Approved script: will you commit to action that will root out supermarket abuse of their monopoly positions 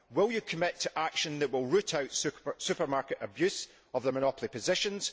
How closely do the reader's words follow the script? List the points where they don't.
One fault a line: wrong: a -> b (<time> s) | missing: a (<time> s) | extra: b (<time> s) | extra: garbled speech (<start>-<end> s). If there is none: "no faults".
no faults